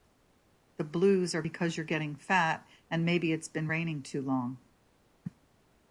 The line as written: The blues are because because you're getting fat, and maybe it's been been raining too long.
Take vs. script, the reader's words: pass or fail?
fail